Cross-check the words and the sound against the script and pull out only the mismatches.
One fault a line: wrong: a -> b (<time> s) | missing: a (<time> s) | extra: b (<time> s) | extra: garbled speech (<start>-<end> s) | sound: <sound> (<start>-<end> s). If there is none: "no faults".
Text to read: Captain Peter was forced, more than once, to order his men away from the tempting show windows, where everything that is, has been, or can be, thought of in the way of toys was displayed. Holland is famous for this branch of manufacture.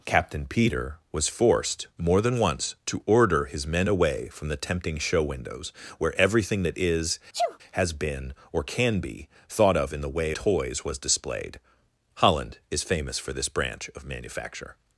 sound: sneeze (7.3-7.6 s)
missing: of (10.3 s)